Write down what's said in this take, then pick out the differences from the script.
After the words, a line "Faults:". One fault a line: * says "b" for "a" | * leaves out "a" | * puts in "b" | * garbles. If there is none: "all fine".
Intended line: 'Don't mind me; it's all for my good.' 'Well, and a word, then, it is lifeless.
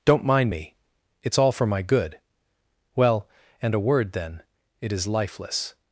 'Don't mind me; it's all for my good.' 'Well, and a word, then, it is lifeless.
Faults:
all fine